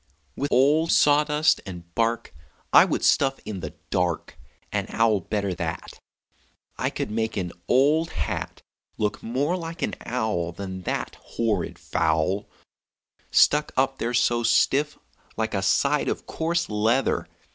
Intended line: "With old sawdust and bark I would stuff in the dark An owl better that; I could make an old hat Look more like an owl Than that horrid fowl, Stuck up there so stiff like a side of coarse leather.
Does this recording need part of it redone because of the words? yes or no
no